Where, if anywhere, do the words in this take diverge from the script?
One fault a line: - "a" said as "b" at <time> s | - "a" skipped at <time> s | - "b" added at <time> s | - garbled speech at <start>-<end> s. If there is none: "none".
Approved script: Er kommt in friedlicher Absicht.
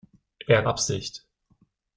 - "kommt in friedlicher" skipped at 0.7 s